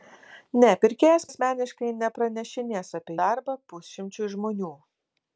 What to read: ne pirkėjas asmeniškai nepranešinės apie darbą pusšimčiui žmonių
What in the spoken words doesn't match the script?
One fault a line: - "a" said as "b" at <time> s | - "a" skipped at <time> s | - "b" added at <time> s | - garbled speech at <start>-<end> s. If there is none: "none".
none